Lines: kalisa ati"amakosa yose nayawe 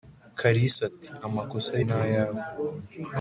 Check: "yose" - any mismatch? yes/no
yes